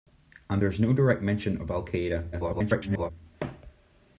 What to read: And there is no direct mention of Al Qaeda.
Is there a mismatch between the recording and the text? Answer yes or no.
yes